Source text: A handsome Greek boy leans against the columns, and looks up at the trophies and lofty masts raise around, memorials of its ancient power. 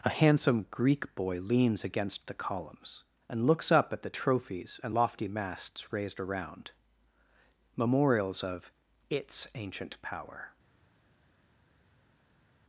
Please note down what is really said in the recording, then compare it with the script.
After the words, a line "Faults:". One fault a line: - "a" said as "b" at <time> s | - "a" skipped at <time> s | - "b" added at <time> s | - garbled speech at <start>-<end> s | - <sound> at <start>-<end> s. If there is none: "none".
A handsome Greek boy leans against the columns, and looks up at the trophies and lofty masts raised around, memorials of its ancient power.
Faults:
- "raise" said as "raised" at 5.9 s